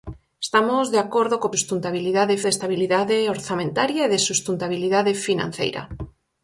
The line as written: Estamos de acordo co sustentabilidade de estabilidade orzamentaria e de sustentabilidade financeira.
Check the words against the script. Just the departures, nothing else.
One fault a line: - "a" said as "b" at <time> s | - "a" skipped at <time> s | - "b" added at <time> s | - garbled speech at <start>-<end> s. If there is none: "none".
none